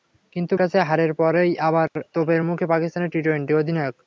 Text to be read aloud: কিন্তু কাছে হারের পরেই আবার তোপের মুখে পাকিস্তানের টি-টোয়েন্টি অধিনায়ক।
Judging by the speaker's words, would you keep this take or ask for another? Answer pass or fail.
pass